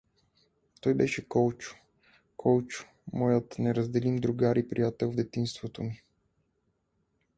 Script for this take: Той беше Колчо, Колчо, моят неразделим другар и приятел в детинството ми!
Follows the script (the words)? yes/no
yes